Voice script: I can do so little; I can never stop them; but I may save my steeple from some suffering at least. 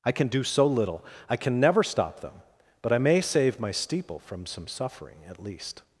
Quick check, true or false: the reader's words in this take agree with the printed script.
true